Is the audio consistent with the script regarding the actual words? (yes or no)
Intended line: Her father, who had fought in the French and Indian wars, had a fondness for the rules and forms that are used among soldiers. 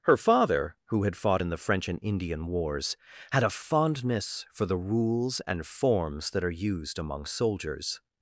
yes